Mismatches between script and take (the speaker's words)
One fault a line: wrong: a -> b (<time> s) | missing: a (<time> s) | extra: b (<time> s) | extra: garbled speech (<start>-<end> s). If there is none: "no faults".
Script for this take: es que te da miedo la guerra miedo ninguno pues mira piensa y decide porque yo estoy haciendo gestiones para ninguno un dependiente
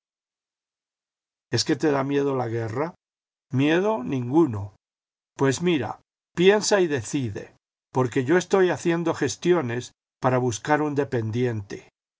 wrong: ninguno -> buscar (10.4 s)